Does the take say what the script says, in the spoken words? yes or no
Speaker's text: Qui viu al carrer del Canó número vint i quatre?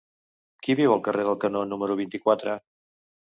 yes